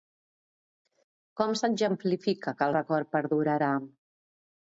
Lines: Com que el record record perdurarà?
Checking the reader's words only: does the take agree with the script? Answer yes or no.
no